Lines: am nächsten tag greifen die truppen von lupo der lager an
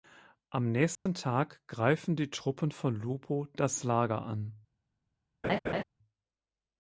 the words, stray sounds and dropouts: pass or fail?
fail